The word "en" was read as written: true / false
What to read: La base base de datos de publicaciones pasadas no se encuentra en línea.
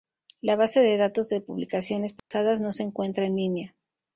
true